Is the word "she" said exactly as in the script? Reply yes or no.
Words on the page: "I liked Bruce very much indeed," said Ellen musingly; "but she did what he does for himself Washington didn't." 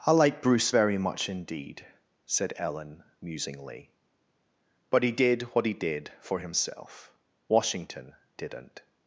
no